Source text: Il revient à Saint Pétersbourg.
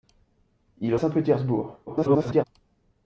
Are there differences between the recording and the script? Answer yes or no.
yes